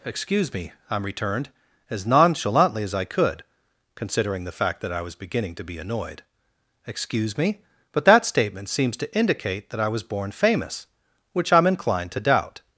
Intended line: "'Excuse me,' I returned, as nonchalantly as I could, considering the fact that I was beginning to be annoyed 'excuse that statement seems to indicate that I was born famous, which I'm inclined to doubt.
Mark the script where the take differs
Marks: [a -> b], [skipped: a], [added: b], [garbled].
"'Excuse me,' I returned, as nonchalantly as I could, considering the fact that I was beginning to be annoyed 'excuse [added: me but] that statement seems to indicate that I was born famous, which I'm inclined to doubt.